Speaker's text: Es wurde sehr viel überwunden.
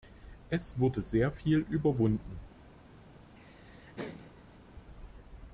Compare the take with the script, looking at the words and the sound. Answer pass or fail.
fail